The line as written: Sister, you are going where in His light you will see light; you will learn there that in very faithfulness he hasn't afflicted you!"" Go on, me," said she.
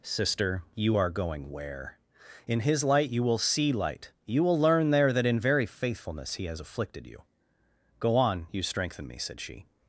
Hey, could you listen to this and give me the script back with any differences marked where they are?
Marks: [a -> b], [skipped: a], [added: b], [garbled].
Sister, you are going where in His light you will see light; you will learn there that in very faithfulness he [hasn't -> has] afflicted you!"" Go on, [added: you strengthen] me," said she.